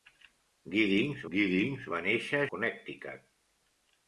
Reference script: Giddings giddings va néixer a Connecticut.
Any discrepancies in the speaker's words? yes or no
no